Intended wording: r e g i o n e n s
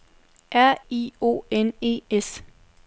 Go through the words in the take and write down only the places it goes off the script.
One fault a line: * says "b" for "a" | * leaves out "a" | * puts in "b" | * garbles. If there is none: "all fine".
* leaves out "e g"
* leaves out "n"